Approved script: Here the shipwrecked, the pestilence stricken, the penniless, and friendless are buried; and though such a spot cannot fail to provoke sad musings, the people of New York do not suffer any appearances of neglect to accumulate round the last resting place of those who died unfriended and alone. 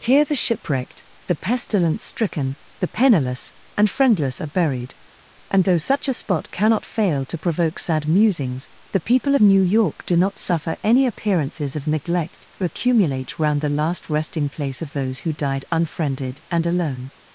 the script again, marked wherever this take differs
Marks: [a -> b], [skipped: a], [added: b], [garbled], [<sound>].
Here the shipwrecked, the pestilence stricken, the penniless, and friendless are buried; and though such a spot cannot fail to provoke sad musings, the people of New York do not suffer any appearances of neglect to accumulate round the last resting place of those who died unfriended and alone.